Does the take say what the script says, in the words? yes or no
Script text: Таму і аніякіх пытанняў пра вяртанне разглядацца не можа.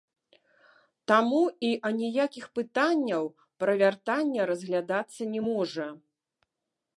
yes